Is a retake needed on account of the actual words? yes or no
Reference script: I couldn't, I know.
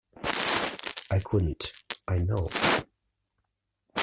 no